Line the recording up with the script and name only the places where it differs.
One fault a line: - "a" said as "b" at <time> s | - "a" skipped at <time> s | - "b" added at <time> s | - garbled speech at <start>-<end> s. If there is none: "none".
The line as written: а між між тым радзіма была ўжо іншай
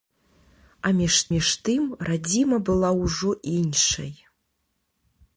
none